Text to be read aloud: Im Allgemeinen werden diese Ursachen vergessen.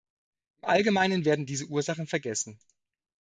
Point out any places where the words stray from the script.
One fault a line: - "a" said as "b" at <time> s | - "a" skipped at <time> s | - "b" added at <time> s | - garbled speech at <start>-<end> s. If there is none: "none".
none